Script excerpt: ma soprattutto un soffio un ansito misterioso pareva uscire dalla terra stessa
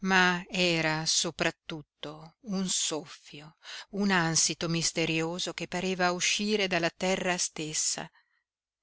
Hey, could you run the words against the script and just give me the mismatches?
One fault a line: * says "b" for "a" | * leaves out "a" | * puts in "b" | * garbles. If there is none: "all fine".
* puts in "era"
* puts in "che"